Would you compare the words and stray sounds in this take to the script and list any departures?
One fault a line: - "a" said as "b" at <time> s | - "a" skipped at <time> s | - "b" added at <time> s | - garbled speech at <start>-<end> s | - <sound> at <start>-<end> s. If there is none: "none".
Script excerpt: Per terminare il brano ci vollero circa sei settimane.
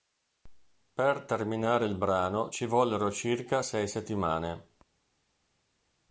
none